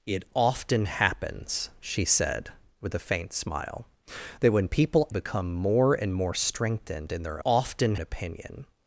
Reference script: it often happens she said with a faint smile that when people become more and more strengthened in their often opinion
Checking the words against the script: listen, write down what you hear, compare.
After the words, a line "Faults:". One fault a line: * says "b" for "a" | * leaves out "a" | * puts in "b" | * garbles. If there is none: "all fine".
it often happens she said with a faint smile that when people become more and more strengthened in their often opinion
Faults:
all fine